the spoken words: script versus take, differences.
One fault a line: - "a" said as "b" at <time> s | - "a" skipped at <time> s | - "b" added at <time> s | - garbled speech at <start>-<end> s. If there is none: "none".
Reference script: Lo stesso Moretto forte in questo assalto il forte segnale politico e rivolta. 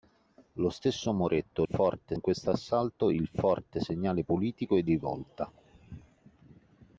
none